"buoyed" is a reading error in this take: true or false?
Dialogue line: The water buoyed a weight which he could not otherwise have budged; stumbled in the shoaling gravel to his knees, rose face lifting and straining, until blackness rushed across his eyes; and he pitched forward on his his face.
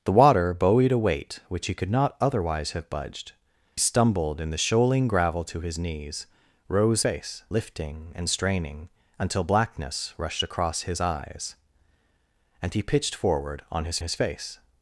false